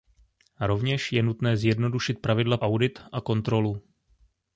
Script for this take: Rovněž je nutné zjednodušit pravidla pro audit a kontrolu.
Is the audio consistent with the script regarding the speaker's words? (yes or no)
no